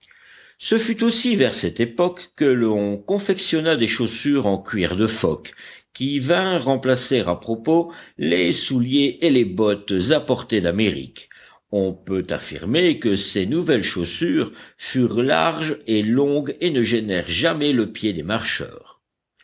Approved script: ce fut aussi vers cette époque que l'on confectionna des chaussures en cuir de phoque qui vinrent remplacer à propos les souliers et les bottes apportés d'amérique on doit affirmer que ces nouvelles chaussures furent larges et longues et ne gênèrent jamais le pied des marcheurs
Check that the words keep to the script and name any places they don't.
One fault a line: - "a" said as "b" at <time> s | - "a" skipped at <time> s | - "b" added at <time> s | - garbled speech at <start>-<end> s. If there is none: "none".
- "doit" said as "peut" at 11.9 s